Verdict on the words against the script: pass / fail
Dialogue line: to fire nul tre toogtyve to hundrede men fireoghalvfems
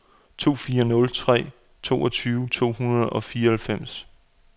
fail